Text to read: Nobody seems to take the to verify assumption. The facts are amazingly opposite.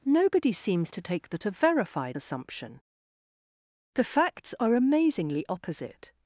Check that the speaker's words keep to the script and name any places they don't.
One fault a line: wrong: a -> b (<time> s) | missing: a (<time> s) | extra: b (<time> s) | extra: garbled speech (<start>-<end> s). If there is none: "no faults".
no faults